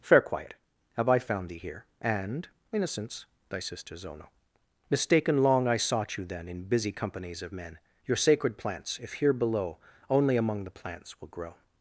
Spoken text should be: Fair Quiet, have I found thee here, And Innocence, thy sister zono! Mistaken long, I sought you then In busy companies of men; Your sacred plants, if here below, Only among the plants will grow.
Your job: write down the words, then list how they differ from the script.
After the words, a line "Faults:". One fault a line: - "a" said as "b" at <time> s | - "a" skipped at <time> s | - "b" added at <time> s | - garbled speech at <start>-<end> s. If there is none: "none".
Fair Quiet, have I found thee here, And Innocence, thy sister zono! Mistaken long, I sought you then In busy companies of men; Your sacred plants, if here below, Only among the plants will grow.
Faults:
none